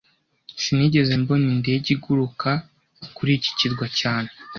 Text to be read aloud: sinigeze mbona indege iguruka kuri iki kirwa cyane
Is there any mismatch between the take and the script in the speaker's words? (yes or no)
no